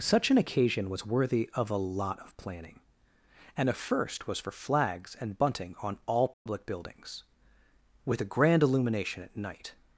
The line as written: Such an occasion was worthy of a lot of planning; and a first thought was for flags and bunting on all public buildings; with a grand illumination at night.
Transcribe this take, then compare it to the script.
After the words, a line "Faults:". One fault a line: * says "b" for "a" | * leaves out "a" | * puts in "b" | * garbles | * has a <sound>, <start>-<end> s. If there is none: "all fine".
Such an occasion was worthy of a lot of planning; and a first was for flags and bunting on all public buildings; with a grand illumination at night.
Faults:
* leaves out "thought"
* has a dropout, 6.3-6.5 s